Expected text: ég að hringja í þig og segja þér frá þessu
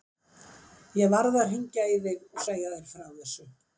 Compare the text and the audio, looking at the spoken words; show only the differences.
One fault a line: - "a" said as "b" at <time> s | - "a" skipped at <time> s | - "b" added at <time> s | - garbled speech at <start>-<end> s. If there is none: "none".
- "varð" added at 1.1 s